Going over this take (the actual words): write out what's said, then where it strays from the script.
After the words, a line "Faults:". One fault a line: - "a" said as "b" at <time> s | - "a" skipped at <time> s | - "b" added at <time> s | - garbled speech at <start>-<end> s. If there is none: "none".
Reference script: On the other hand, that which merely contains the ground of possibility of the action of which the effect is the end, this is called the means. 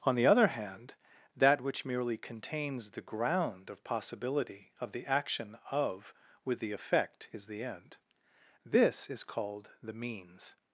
On the other hand, that which merely contains the ground of possibility of the action of with the effect is the end, this is called the means.
Faults:
- "which" said as "with" at 6.4 s